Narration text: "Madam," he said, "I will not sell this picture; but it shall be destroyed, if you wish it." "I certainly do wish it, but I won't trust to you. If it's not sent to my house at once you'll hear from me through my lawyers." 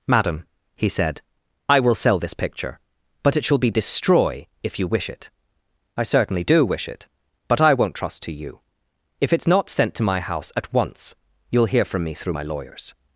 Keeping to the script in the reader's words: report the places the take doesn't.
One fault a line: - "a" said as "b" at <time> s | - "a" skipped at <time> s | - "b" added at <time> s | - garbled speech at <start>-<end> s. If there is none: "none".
- "not" skipped at 1.9 s
- "destroyed" said as "destroy" at 3.7 s